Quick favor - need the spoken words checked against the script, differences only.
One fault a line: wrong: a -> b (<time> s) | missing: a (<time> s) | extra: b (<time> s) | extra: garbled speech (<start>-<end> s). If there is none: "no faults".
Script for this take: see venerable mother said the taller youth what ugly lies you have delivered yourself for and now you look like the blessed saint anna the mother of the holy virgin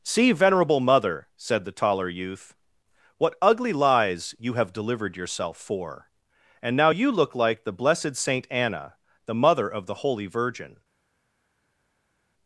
no faults